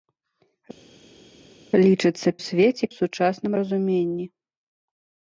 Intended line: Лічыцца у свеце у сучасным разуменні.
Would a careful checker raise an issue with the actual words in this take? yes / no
no